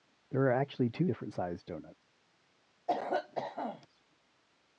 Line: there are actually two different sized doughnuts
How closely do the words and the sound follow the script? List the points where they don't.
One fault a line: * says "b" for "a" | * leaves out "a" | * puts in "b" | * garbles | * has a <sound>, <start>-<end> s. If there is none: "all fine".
* has a cough, 2.9-3.9 s